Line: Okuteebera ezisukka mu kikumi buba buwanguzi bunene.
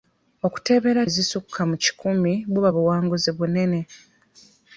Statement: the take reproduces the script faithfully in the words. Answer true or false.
true